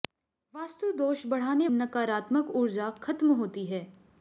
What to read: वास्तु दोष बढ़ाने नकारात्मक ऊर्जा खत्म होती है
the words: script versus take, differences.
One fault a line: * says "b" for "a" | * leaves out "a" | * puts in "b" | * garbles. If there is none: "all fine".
all fine